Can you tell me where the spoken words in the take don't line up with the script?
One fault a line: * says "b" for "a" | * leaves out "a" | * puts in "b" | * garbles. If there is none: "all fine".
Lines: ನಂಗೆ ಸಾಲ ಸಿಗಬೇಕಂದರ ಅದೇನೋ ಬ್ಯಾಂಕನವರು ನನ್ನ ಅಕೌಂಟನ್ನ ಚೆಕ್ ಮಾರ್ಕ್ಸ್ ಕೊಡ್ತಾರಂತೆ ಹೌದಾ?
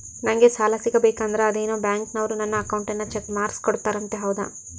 all fine